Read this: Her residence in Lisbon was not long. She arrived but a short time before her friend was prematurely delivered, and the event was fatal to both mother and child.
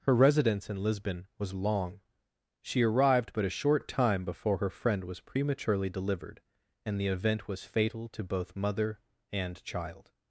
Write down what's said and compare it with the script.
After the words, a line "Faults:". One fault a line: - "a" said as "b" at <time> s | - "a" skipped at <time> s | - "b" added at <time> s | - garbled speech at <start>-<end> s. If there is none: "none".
Her residence in Lisbon was long. She arrived but a short time before her friend was prematurely delivered, and the event was fatal to both mother and child.
Faults:
- "not" skipped at 1.5 s